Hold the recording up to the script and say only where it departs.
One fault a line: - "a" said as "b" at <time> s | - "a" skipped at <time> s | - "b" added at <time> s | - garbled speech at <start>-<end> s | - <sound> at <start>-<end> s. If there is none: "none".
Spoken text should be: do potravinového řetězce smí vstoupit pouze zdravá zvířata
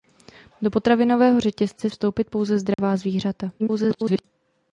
- "smí" skipped at 1.9 s
- dropout at 2.7-2.8 s
- garbled speech at 3.6-4.2 s